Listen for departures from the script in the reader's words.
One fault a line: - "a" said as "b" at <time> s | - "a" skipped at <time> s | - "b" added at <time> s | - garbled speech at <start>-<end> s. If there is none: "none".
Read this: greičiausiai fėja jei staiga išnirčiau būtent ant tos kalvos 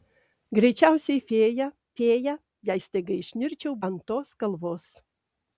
- "fėja" added at 2.0 s
- "būtent" skipped at 3.8 s